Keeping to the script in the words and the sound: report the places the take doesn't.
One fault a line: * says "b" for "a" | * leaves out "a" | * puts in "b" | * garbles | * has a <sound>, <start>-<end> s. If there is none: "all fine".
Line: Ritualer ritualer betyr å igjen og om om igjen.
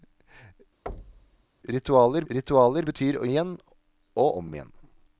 * has a thud, 0.9-1.4 s